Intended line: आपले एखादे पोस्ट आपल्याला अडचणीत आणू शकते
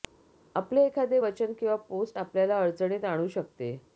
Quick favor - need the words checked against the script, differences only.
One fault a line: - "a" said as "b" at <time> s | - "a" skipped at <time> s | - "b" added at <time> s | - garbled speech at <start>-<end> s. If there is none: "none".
- "वचन किंवा" added at 1.2 s